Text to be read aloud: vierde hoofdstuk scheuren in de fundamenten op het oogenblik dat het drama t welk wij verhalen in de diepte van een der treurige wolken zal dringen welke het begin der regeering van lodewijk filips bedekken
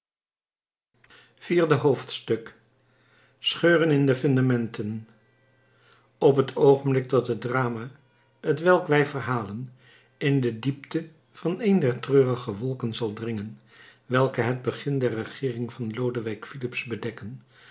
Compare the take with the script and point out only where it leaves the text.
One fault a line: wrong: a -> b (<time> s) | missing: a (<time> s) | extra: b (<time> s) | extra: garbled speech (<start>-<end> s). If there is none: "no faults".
no faults